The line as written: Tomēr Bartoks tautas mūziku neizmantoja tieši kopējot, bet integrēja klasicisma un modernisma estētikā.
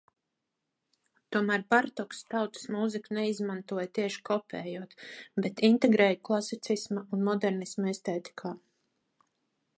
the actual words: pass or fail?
pass